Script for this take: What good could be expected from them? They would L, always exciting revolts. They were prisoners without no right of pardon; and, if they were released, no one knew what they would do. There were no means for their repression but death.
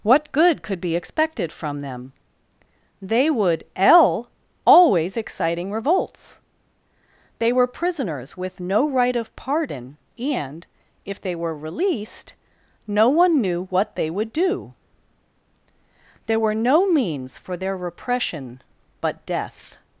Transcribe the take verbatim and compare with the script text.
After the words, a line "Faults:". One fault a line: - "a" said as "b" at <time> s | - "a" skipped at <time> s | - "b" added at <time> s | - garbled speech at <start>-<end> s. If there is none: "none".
What good could be expected from them? They would L, always exciting revolts. They were prisoners with no right of pardon; and, if they were released, no one knew what they would do. There were no means for their repression but death.
Faults:
- "without" said as "with" at 8.3 s